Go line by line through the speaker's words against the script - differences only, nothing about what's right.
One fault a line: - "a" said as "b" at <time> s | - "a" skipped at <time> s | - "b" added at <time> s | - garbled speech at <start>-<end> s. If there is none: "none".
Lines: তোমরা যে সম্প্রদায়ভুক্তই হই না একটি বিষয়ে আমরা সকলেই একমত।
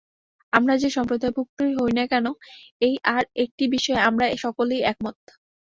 - "তোমরা" said as "আমরা" at 0.5 s
- "কেন এই আর" added at 2.1 s